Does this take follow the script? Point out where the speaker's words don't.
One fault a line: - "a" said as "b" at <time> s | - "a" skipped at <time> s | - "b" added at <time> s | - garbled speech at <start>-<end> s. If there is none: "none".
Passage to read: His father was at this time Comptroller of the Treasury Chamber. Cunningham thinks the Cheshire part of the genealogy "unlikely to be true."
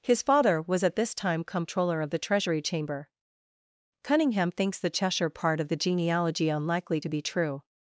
none